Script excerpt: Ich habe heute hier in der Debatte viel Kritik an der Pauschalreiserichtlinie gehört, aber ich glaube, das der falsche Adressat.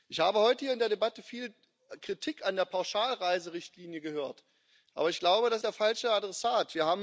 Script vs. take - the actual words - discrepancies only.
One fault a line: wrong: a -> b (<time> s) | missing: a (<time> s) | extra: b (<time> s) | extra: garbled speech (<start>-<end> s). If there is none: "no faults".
no faults